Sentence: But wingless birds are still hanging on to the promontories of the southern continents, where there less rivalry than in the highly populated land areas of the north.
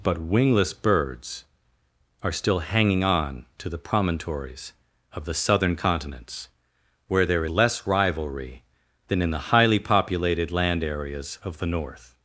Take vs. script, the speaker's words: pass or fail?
pass